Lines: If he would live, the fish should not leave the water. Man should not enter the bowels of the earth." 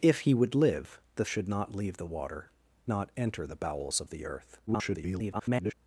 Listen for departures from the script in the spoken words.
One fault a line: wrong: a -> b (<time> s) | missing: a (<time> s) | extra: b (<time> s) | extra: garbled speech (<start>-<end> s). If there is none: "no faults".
missing: fish (1.2 s)
missing: Man should (2.5 s)
extra: garbled speech (4.7-5.7 s)